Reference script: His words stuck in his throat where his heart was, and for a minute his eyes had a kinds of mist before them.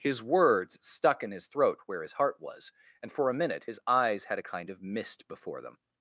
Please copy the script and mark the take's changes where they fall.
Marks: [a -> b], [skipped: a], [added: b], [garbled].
His words stuck in his throat where his heart was, and for a minute his eyes had a [kinds -> kind] of mist before them.